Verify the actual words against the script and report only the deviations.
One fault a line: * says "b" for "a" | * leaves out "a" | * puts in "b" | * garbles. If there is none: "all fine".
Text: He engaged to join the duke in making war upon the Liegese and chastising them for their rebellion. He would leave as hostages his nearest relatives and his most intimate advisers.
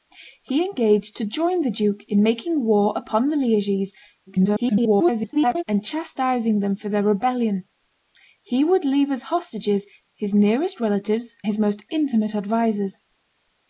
* garbles
* leaves out "and"